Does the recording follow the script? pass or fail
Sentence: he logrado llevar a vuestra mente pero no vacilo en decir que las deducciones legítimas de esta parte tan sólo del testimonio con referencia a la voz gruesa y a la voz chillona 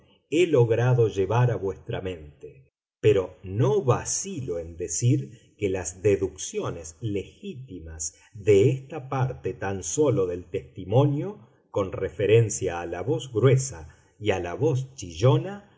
pass